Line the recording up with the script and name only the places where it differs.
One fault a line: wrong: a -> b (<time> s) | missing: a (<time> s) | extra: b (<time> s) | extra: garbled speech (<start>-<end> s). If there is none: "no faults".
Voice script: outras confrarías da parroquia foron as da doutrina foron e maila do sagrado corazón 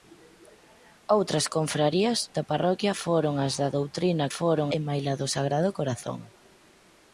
no faults